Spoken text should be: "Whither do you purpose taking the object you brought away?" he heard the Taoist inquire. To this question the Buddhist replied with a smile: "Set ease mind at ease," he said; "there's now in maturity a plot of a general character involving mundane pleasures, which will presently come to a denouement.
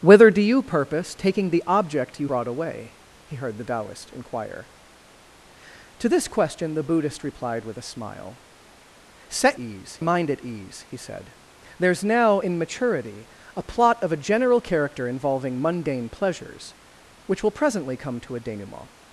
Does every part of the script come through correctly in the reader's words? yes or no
yes